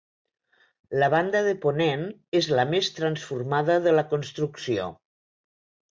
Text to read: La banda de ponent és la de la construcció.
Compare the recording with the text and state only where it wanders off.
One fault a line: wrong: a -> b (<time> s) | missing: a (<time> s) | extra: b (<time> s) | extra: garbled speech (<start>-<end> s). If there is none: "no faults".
extra: més transformada (2.7 s)